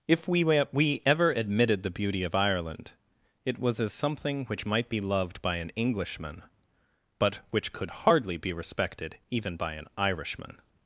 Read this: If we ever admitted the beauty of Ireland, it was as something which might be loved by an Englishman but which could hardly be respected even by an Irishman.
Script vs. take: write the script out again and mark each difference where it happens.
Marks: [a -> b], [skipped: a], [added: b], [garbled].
If we [added: we] ever admitted the beauty of Ireland, it was as something which might be loved by an Englishman but which could hardly be respected even by an Irishman.